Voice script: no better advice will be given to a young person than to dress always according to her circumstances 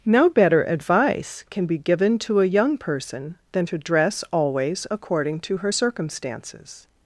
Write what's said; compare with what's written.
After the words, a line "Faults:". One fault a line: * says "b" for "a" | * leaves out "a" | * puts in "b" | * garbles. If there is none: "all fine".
no better advice can be given to a young person than to dress always according to her circumstances
Faults:
* says "can" for "will"